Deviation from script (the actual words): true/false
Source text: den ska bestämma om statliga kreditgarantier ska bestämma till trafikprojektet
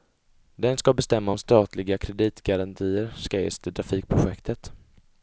true